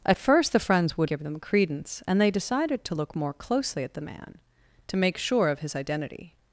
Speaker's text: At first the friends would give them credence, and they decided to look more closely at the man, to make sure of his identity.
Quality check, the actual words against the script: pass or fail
pass